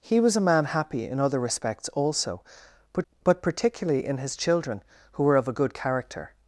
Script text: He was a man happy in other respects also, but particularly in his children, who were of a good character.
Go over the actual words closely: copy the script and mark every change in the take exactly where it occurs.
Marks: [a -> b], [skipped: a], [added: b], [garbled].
He was a man happy in other respects also, but [added: but] particularly in his children, who were of a good character.